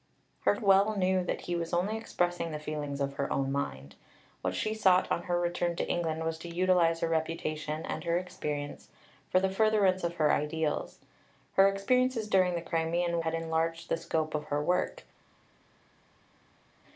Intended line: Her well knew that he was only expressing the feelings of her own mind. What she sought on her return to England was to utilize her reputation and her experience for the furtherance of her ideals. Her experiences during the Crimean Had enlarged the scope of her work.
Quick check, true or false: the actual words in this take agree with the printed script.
true